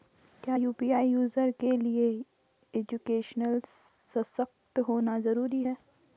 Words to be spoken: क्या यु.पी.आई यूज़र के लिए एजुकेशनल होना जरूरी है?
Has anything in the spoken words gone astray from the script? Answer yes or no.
yes